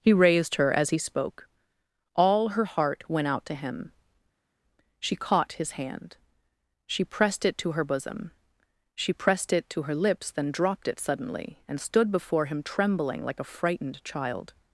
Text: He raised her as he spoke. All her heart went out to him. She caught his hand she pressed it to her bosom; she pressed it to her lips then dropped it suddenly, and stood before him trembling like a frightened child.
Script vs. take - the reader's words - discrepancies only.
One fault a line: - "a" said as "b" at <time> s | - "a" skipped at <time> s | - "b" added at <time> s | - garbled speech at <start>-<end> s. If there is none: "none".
none